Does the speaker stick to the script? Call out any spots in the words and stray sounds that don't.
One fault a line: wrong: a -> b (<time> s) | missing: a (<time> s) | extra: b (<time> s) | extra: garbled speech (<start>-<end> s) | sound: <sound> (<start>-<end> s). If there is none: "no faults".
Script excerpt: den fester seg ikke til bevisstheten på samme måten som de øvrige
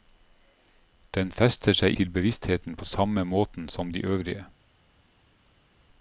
missing: ikke (2.0 s)